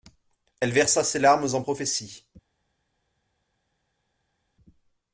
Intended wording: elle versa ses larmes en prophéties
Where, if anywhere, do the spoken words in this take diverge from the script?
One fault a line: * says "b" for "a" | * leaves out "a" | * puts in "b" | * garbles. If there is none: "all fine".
all fine